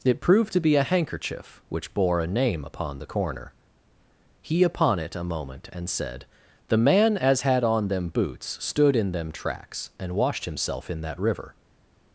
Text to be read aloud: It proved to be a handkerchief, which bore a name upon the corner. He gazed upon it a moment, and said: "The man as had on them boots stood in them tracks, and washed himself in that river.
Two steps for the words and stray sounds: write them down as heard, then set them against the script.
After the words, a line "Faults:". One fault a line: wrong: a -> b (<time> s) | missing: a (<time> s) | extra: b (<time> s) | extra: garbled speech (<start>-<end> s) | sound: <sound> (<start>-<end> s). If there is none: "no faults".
It proved to be a handkerchief, which bore a name upon the corner. He upon it a moment, and said: "The man as had on them boots stood in them tracks, and washed himself in that river.
Faults:
missing: gazed (4.6 s)